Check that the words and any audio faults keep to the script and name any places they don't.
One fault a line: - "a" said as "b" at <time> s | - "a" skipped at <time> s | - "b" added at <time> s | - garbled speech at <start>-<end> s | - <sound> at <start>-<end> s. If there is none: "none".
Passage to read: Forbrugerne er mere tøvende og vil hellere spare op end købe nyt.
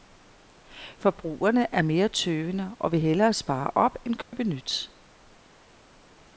- dropout at 4.2-4.3 s